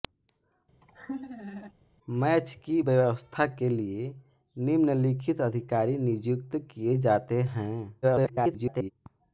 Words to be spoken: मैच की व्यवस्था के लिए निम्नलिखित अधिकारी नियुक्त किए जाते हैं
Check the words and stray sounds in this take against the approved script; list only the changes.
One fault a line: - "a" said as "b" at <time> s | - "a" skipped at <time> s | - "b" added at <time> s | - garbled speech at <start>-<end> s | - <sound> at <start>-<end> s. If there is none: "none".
- laugh at 0.8-1.7 s
- garbled speech at 8.0-8.9 s